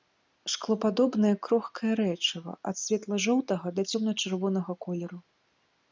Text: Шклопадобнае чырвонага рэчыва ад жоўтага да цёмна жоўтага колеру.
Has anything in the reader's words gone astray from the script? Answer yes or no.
yes